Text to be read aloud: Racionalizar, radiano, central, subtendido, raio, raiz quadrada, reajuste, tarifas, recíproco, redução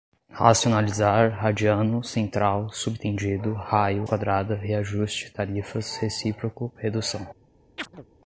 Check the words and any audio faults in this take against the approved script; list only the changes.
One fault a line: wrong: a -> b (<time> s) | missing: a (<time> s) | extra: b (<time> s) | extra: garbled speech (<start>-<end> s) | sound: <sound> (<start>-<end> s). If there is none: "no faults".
missing: raiz (4.0 s)
sound: chirp (7.8-8.1 s)